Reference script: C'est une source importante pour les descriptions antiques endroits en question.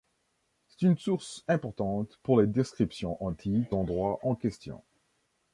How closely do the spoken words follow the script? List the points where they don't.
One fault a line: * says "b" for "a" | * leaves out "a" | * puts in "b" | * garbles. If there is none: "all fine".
all fine